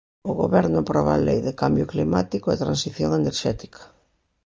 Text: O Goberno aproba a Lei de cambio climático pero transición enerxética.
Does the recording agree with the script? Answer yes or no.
no